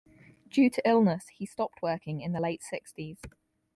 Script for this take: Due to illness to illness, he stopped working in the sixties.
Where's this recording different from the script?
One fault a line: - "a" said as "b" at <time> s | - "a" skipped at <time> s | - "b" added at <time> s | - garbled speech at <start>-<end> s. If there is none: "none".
- "to illness" skipped at 1.3 s
- "late" added at 2.4 s